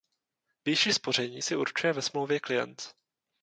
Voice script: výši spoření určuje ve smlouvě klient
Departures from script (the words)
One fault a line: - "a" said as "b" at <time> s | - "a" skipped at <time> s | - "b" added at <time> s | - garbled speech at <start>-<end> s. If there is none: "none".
- "si" added at 1.4 s